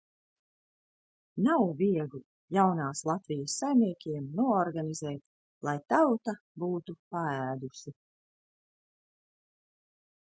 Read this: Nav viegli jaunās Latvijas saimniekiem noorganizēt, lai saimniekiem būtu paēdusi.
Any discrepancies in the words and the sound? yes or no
yes